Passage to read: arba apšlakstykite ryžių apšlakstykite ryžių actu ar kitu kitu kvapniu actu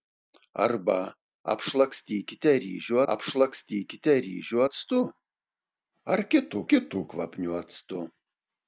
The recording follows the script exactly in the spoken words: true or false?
true